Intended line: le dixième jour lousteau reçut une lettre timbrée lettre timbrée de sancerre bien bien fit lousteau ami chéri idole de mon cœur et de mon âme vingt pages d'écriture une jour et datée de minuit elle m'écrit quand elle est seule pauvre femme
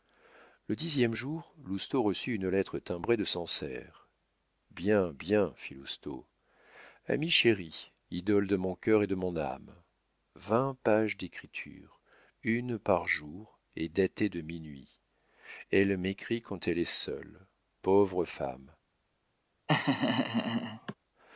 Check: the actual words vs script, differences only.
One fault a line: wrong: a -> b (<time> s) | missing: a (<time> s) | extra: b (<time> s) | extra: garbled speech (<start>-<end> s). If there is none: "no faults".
missing: lettre timbrée (3.2 s)
extra: par (12.8 s)